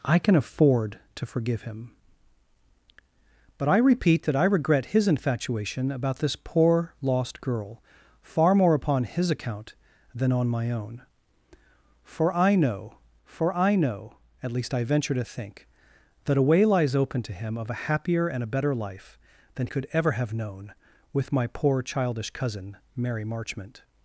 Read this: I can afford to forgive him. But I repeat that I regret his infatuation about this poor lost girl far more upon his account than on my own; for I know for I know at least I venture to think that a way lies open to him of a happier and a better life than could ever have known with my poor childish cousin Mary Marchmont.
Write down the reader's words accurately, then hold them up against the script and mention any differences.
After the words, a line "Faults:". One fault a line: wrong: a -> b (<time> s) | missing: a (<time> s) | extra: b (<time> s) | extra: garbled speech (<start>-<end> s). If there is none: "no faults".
I can afford to forgive him. But I repeat that I regret his infatuation about this poor lost girl far more upon his account than on my own; for I know for I know at least I venture to think that a way lies open to him of a happier and a better life than could ever have known with my poor childish cousin Mary Marchmont.
Faults:
no faults